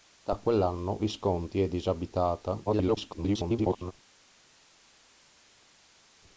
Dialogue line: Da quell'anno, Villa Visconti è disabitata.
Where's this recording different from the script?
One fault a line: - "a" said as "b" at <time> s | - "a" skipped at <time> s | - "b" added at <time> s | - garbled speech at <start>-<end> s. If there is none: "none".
- "Villa" skipped at 1.0 s
- garbled speech at 2.7-3.9 s